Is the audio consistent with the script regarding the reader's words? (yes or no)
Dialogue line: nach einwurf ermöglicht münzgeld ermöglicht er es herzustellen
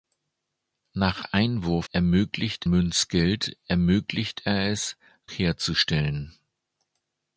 yes